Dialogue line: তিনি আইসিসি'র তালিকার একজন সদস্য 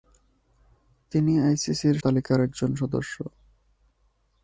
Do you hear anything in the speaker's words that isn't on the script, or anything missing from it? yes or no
no